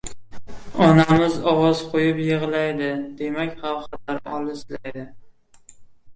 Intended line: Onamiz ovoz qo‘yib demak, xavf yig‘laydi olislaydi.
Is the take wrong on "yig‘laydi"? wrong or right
wrong